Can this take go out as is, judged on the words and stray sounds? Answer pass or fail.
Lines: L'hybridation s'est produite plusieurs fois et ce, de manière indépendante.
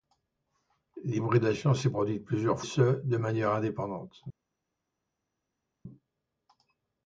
fail